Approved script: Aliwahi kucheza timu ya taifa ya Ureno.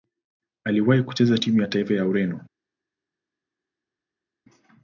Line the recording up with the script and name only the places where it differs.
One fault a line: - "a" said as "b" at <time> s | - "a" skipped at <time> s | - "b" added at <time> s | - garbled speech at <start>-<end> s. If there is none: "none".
none